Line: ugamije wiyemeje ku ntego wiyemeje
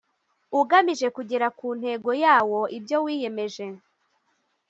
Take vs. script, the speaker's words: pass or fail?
fail